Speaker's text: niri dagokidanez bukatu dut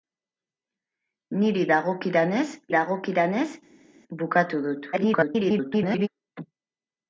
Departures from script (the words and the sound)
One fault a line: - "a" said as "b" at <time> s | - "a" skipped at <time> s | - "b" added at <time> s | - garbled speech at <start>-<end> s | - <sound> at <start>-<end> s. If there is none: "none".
- "dagokidanez" added at 2.7 s
- garbled speech at 4.9-6.1 s